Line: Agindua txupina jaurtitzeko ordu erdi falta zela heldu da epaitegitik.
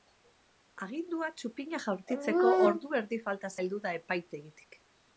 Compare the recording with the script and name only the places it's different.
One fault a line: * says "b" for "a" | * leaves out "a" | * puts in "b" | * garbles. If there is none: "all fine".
* leaves out "zela"